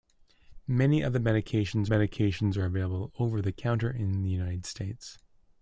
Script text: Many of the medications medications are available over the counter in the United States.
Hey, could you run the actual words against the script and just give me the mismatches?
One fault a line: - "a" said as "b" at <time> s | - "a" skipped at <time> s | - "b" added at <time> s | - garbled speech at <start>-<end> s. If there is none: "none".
none